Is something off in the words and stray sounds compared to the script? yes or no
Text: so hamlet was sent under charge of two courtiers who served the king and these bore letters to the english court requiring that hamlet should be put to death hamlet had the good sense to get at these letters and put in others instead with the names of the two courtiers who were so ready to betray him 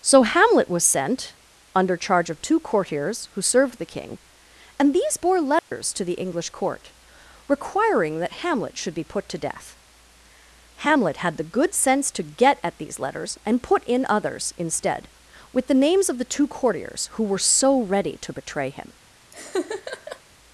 yes